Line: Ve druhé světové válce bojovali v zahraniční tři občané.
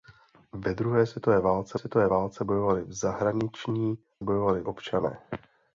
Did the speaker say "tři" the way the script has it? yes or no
no